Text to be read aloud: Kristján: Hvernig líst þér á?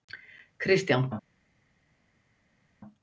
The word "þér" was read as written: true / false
false